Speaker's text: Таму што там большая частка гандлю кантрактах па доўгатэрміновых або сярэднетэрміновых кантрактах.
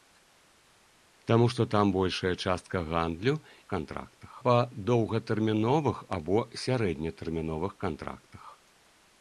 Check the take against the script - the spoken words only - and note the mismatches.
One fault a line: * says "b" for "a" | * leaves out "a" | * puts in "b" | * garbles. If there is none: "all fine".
all fine